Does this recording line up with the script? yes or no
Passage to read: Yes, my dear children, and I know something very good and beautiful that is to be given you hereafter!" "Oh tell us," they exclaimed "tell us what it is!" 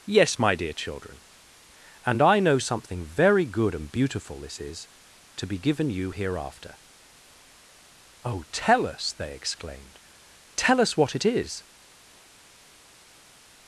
no